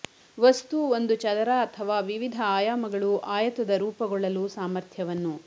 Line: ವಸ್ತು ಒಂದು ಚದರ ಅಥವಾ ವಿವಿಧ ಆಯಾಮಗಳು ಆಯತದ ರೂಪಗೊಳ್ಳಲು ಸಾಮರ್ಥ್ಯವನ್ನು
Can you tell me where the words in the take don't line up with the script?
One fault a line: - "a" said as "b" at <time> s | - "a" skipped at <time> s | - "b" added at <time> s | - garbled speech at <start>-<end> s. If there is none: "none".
none